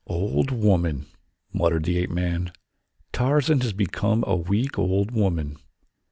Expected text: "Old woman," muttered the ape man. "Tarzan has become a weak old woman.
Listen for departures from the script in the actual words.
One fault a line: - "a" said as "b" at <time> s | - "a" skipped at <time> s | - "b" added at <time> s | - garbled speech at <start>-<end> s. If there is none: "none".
none